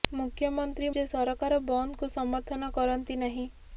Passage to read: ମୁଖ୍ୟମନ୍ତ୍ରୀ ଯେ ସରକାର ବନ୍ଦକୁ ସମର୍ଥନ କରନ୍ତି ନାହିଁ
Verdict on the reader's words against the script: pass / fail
pass